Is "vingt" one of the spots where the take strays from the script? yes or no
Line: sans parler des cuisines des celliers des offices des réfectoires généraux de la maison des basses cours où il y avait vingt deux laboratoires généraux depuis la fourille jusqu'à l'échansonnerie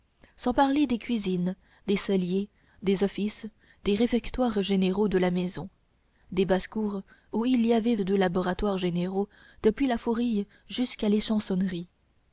yes